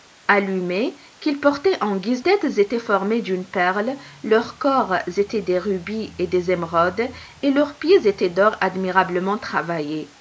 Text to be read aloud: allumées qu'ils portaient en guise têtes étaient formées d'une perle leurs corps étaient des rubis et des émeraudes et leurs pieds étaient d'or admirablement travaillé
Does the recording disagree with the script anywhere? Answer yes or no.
no